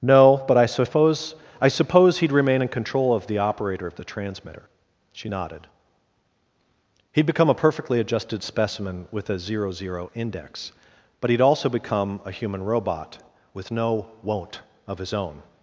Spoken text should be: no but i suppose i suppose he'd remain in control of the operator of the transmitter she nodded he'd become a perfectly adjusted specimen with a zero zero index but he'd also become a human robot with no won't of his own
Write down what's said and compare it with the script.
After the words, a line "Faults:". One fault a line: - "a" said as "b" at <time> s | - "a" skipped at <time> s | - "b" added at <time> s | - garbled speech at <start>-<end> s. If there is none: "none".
no but i suppose i suppose he'd remain in control of the operator of the transmitter she nodded he'd become a perfectly adjusted specimen with a zero zero index but he'd also become a human robot with no won't of his own
Faults:
none